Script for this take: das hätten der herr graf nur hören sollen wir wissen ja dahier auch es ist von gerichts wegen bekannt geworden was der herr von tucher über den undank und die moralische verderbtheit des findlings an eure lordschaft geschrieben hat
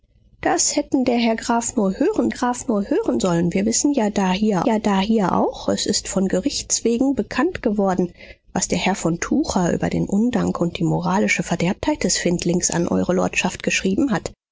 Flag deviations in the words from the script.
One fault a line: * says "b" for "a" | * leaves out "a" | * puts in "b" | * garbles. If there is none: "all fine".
* puts in "graf nur hören"
* puts in "ja dahier"